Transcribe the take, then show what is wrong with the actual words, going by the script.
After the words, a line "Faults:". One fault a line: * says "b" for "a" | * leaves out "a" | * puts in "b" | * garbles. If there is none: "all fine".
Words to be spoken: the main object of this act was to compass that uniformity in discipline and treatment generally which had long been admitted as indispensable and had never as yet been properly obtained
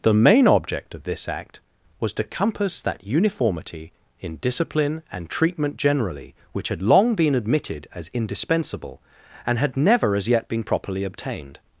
the main object of this act was to compass that uniformity in discipline and treatment generally which had long been admitted as indispensable and had never as yet been properly obtained
Faults:
all fine